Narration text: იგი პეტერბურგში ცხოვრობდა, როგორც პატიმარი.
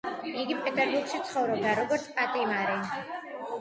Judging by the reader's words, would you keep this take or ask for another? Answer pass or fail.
pass